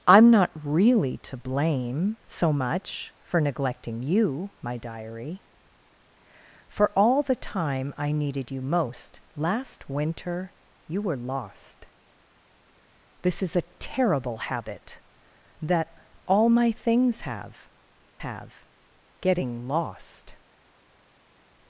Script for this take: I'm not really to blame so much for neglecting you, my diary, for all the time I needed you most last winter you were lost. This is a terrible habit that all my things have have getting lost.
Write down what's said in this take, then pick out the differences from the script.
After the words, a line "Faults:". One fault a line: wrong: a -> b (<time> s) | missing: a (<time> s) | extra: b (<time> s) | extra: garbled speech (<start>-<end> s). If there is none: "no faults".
I'm not really to blame so much for neglecting you, my diary, for all the time I needed you most last winter you were lost. This is a terrible habit that all my things have have getting lost.
Faults:
no faults